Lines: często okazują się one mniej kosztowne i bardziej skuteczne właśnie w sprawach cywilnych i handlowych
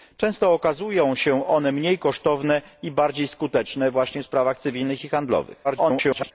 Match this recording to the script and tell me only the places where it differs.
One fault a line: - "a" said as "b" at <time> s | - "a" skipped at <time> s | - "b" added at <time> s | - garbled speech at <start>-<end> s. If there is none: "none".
- garbled speech at 5.6-6.3 s